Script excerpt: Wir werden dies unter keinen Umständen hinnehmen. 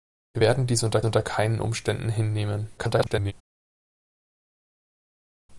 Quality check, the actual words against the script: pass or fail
fail